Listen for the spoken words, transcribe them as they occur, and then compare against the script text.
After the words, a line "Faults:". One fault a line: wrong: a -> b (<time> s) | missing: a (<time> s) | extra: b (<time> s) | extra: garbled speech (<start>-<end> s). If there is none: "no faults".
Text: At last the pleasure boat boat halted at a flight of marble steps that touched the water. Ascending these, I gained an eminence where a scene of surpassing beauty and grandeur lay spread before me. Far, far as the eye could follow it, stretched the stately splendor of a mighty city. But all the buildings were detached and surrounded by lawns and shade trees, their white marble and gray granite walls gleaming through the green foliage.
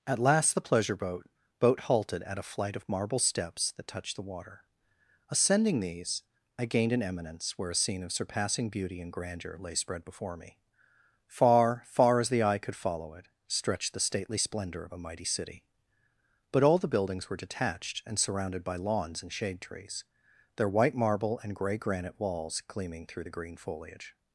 At last the pleasure boat boat halted at a flight of marble steps that touched the water. Ascending these, I gained an eminence where a scene of surpassing beauty and grandeur lay spread before me. Far, far as the eye could follow it, stretched the stately splendor of a mighty city. But all the buildings were detached and surrounded by lawns and shade trees, their white marble and gray granite walls gleaming through the green foliage.
Faults:
no faults